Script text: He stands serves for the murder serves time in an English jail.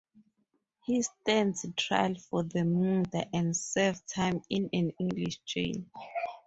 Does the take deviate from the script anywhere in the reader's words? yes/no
yes